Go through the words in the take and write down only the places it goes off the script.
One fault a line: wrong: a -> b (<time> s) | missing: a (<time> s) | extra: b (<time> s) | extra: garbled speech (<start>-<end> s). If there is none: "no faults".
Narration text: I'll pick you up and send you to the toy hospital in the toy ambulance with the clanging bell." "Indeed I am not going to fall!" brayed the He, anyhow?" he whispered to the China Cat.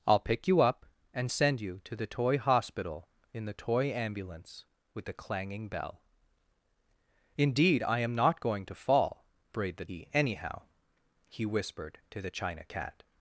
no faults